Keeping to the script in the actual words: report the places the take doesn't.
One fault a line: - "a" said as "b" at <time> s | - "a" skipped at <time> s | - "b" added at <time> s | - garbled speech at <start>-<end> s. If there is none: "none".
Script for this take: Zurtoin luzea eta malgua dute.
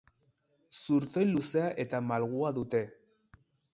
none